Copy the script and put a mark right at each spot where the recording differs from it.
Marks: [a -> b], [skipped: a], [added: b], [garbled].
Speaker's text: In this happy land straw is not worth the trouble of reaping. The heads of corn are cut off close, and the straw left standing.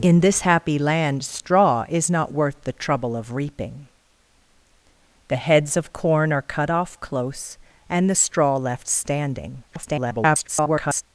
In this happy land straw is not worth the trouble of reaping. The heads of corn are cut off close, and the straw left standing. [garbled]